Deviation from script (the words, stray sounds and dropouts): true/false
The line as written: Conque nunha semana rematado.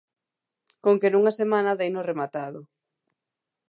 true